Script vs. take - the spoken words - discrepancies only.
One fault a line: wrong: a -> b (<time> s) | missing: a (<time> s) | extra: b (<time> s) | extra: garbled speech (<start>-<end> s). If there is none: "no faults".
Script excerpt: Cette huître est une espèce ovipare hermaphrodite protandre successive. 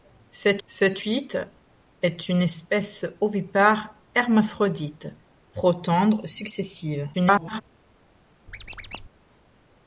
extra: cette (0.7 s)
extra: garbled speech (7.1-7.6 s)